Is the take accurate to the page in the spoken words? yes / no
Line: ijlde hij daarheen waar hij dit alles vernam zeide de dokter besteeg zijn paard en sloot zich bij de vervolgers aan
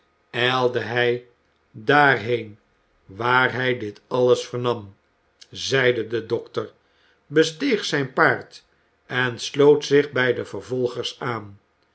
yes